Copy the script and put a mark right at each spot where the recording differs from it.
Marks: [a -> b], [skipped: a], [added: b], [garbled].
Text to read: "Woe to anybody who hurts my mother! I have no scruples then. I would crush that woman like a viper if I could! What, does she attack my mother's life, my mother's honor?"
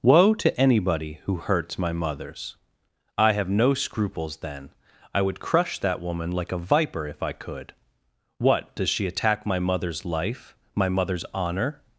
"Woe to anybody who hurts my [mother! -> mothers] I have no scruples then. I would crush that woman like a viper if I could! What, does she attack my mother's life, my mother's honor?"